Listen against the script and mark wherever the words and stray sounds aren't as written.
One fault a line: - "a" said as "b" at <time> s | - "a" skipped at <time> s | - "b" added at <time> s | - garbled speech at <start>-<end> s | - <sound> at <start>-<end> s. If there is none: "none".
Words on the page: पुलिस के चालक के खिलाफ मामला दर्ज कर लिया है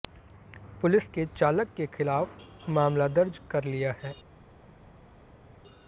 none